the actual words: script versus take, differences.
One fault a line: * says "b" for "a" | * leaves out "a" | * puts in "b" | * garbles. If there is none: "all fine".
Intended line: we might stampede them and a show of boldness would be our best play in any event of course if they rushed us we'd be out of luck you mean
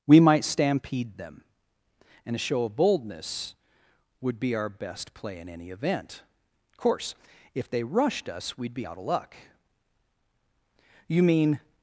all fine